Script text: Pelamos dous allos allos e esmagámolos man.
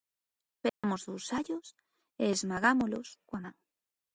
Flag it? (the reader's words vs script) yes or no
yes